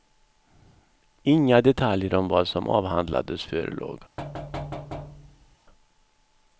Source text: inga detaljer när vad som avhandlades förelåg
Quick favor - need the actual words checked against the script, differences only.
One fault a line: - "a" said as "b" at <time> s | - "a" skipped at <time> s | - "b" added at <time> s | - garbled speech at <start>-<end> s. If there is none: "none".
- "när" said as "om" at 2.1 s